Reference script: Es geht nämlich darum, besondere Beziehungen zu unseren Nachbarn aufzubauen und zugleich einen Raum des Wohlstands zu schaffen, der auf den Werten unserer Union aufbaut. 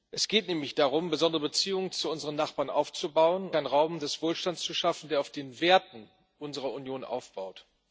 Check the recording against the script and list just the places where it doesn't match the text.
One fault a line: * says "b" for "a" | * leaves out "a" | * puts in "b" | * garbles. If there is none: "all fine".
* leaves out "und zugleich"